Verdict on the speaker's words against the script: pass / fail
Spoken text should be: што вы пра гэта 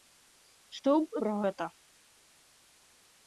pass